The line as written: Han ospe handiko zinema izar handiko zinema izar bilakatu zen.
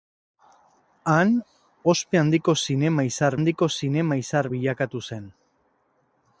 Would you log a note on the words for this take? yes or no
no